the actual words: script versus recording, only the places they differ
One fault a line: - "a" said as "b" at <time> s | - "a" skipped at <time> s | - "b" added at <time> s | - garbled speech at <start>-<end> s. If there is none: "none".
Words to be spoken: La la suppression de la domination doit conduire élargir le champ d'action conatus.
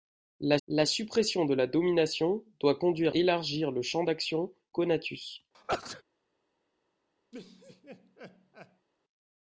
none